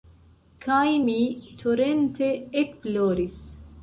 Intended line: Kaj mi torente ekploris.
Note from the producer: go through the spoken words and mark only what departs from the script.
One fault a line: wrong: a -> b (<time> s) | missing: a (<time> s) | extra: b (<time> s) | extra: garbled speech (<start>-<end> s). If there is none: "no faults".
no faults